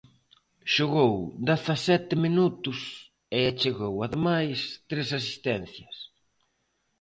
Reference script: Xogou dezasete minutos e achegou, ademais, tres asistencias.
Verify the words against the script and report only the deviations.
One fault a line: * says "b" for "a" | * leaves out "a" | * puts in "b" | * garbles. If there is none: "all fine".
all fine